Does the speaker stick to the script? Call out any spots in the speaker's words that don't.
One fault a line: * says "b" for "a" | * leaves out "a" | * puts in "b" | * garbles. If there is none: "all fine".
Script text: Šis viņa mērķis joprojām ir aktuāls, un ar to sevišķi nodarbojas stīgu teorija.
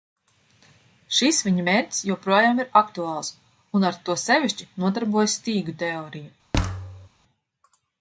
all fine